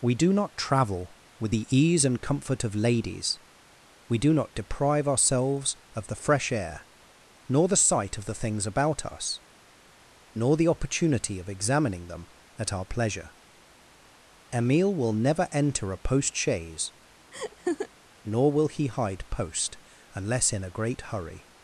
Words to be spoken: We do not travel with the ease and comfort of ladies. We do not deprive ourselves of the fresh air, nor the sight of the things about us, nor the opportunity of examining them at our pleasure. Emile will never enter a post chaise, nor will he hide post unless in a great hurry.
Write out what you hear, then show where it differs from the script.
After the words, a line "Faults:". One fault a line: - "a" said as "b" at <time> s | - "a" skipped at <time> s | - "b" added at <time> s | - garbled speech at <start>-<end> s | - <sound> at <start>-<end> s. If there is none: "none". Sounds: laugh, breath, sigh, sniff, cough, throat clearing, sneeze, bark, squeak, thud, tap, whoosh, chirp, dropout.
We do not travel with the ease and comfort of ladies. We do not deprive ourselves of the fresh air, nor the sight of the things about us, nor the opportunity of examining them at our pleasure. Emile will never enter a post chaise, nor will he hide post unless in a great hurry.
Faults:
- laugh at 17.3-17.9 s